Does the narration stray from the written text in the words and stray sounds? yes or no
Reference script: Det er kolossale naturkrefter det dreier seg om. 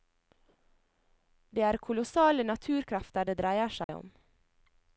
yes